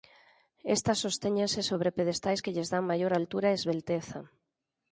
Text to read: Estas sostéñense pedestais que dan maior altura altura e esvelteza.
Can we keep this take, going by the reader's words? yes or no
no